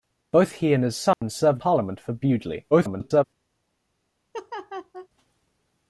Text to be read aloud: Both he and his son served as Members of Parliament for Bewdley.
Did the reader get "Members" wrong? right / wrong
wrong